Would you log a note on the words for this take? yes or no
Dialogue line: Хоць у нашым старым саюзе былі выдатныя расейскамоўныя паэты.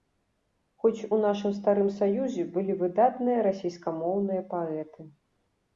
no